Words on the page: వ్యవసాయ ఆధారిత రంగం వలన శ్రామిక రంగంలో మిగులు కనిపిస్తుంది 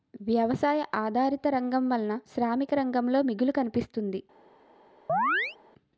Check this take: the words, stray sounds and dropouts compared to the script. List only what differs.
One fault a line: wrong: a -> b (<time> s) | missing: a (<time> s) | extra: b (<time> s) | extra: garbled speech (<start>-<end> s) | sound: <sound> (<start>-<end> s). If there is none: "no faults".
sound: chirp (5.1-5.6 s)